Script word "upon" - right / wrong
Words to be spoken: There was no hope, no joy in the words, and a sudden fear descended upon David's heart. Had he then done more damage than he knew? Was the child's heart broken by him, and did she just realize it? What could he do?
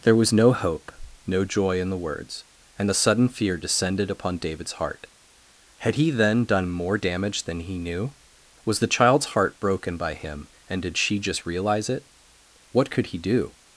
right